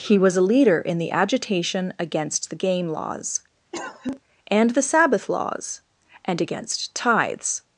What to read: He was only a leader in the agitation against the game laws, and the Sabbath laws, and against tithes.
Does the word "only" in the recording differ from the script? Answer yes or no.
yes